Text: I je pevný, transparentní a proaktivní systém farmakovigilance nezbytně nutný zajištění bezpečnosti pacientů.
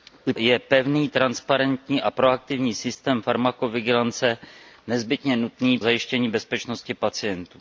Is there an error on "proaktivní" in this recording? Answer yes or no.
no